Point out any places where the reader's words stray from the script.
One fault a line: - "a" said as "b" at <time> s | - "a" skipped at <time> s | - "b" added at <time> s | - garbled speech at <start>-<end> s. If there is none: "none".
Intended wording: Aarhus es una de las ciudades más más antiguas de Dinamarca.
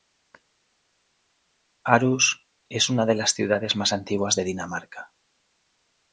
- "más" skipped at 3.9 s